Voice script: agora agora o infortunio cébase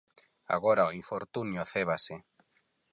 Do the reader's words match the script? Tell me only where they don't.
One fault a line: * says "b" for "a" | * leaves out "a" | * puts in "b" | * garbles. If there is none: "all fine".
* leaves out "agora"